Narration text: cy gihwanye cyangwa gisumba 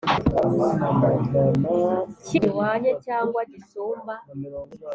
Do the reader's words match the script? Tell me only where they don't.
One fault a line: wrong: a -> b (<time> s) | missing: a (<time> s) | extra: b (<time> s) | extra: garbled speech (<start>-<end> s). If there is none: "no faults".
no faults